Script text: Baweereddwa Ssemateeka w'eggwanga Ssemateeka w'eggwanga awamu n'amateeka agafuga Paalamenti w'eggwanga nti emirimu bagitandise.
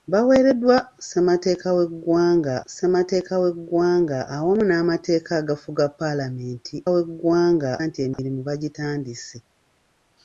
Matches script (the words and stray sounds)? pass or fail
fail